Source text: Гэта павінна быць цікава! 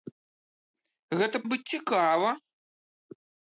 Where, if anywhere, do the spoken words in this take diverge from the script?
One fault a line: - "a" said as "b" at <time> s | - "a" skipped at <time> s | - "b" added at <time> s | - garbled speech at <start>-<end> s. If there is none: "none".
- "павінна" skipped at 1.4 s